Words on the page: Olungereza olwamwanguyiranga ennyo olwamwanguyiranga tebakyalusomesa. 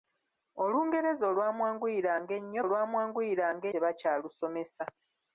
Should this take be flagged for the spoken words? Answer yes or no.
no